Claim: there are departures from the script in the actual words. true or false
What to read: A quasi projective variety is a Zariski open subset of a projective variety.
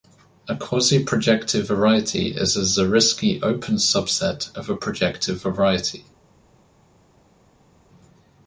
false